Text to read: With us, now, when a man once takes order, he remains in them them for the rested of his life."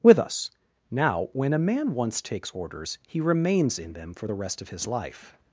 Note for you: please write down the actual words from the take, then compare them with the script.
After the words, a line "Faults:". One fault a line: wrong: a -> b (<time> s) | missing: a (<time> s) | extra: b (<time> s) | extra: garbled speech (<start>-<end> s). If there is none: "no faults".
With us, now, when a man once takes orders, he remains in them for the rest of his life."
Faults:
wrong: order -> orders (2.5 s)
missing: them (4.2 s)
wrong: rested -> rest (4.3 s)